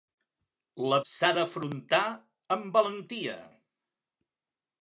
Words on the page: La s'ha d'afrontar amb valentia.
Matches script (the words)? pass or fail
pass